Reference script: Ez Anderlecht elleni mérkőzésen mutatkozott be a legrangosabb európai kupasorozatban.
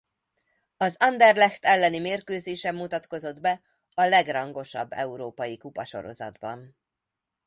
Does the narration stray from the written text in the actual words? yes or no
yes